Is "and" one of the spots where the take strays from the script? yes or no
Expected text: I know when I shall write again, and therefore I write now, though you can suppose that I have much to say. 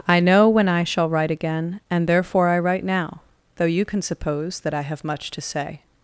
no